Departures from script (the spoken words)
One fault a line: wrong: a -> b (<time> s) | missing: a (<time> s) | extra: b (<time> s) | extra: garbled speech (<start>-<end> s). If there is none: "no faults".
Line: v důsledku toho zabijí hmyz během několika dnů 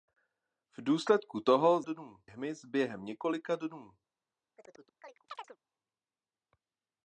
wrong: zabijí -> dnů (1.8 s)